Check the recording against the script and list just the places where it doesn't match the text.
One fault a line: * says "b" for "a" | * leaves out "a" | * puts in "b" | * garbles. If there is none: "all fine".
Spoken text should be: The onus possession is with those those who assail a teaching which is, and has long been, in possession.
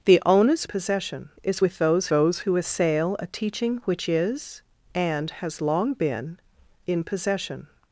all fine